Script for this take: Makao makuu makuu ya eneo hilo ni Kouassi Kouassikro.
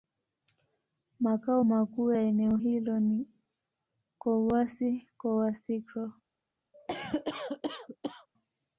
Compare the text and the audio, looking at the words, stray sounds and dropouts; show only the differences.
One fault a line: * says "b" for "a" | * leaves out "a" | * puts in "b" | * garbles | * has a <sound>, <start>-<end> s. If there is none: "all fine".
* leaves out "makuu"
* has a cough, 6.7-8.3 s